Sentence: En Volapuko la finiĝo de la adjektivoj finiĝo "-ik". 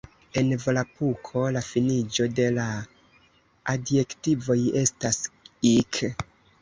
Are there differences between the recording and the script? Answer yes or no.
yes